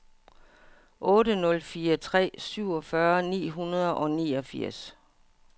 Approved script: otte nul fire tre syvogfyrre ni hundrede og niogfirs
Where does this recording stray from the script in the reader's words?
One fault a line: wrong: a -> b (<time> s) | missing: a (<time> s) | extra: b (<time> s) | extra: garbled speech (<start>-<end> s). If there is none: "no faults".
no faults